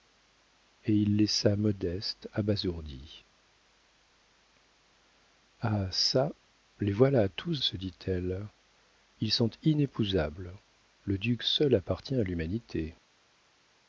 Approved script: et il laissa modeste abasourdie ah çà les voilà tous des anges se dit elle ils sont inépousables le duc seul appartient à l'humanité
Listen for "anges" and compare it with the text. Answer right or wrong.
wrong